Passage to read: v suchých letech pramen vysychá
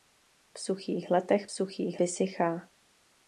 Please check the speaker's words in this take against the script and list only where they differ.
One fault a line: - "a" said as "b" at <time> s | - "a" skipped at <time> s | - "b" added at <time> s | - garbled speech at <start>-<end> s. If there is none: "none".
- "pramen" said as "suchých" at 1.5 s